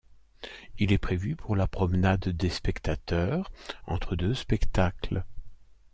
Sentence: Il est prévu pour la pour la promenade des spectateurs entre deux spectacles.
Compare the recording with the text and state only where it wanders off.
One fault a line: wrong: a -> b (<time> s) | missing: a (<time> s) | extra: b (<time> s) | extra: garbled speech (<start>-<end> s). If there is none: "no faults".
missing: pour la (1.7 s)